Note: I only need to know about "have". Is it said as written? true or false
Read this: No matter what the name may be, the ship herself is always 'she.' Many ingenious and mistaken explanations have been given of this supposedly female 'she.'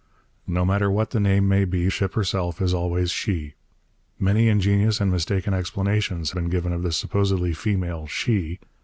false